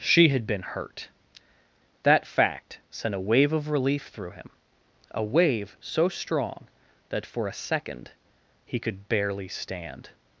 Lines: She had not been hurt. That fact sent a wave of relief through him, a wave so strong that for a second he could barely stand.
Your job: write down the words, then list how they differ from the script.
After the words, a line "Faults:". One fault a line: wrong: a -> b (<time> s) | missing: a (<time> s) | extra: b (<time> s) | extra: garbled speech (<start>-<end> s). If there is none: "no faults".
She had been hurt. That fact sent a wave of relief through him, a wave so strong that for a second he could barely stand.
Faults:
missing: not (0.5 s)